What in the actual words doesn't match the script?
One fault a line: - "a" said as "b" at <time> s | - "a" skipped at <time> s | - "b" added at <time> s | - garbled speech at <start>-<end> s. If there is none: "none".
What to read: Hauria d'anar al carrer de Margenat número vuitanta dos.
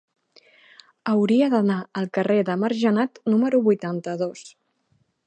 none